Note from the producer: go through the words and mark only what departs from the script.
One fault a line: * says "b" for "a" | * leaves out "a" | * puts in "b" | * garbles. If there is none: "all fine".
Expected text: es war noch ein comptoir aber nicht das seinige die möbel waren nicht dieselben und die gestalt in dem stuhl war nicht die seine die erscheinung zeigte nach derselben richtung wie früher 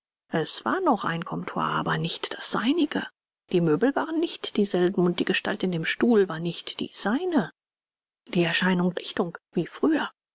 * leaves out "zeigte nach derselben"